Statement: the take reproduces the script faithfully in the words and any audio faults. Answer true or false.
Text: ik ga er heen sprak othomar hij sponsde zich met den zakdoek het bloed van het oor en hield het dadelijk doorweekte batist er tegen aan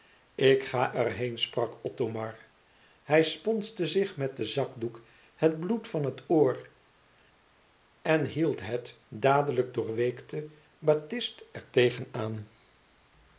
true